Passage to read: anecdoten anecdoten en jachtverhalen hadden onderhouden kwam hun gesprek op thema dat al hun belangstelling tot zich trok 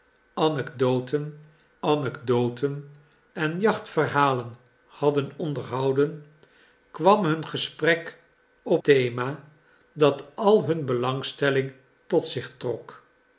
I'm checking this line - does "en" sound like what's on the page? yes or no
yes